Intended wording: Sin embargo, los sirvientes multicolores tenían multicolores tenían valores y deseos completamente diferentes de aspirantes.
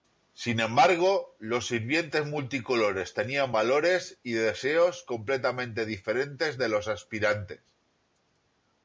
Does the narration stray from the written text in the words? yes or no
yes